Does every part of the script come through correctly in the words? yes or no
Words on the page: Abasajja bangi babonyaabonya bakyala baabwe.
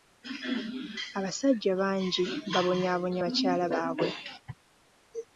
yes